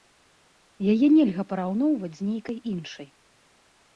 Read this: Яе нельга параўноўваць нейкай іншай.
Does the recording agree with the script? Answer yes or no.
no